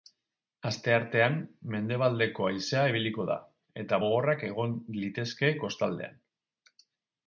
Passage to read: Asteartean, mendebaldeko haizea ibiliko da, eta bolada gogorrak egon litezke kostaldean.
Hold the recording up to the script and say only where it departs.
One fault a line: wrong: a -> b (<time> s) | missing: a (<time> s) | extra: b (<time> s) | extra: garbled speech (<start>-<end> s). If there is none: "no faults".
missing: bolada (4.0 s)